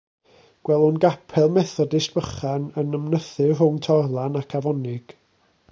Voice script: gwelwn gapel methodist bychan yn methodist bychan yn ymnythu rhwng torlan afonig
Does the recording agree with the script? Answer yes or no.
no